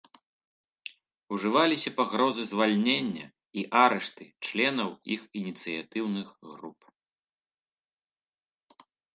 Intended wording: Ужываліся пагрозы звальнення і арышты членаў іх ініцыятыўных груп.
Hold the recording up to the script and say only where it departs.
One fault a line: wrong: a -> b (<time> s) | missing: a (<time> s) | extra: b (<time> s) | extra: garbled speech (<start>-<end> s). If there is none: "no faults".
no faults